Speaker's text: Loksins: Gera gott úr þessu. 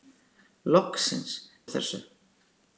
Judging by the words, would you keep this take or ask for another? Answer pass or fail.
fail